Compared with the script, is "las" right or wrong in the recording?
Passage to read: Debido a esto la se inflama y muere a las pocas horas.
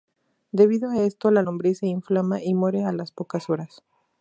right